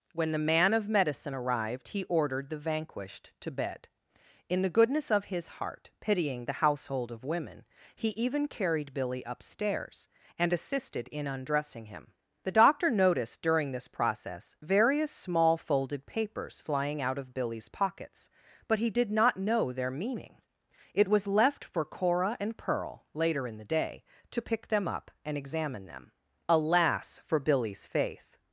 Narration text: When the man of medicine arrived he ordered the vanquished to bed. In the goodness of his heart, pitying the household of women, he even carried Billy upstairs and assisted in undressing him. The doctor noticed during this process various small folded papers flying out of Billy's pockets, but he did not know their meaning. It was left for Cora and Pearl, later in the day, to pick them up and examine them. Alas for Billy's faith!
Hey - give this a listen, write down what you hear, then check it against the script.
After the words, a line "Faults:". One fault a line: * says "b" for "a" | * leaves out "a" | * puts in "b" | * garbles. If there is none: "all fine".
When the man of medicine arrived he ordered the vanquished to bed. In the goodness of his heart, pitying the household of women, he even carried Billy upstairs and assisted in undressing him. The doctor noticed during this process various small folded papers flying out of Billy's pockets, but he did not know their meaning. It was left for Cora and Pearl, later in the day, to pick them up and examine them. Alas for Billy's faith!
Faults:
all fine